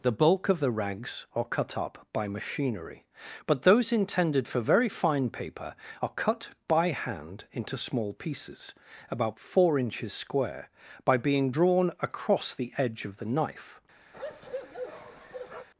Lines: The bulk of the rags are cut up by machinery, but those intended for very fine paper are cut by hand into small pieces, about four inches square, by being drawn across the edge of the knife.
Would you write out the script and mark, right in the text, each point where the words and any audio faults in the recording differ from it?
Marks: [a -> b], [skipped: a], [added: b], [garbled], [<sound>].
The bulk of the rags are cut up by machinery, but those intended for very fine paper are cut by hand into small pieces, about four inches square, by being drawn across the edge of the knife. [bark]